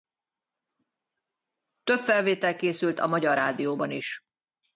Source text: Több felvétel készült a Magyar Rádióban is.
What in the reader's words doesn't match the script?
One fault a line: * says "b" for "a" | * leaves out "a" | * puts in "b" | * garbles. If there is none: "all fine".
all fine